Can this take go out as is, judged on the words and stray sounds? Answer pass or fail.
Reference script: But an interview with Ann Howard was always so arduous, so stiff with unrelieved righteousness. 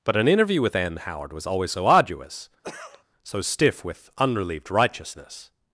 fail